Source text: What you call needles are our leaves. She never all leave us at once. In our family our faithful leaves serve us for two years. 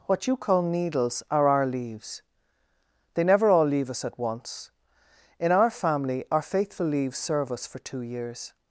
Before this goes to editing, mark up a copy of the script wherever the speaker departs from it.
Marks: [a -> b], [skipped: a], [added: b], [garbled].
What you call needles are our leaves. [She -> They] never all leave us at once. In our family our faithful leaves serve us for two years.